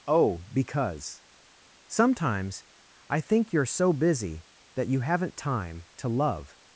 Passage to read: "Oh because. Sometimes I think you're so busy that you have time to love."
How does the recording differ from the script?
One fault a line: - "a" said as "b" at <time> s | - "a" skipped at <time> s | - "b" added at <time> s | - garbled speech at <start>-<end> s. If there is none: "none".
- "have" said as "haven't" at 5.0 s